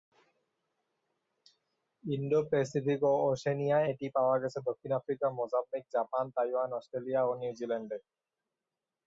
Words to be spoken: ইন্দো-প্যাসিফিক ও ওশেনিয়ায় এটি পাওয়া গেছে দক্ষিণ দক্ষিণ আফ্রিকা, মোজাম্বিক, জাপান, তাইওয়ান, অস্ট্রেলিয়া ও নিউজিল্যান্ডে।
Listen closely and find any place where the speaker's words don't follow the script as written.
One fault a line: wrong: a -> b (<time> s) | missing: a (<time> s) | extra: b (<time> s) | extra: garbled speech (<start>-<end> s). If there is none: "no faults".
missing: দক্ষিণ (4.9 s)